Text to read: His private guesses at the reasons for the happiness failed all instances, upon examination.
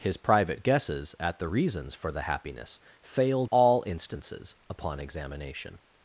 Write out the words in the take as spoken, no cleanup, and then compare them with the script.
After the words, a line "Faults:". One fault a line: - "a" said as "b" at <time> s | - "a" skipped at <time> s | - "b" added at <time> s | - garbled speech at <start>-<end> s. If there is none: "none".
His private guesses at the reasons for the happiness failed all instances, upon examination.
Faults:
none